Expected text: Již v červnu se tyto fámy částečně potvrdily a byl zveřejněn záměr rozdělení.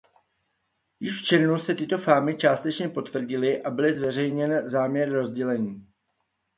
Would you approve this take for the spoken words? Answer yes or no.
yes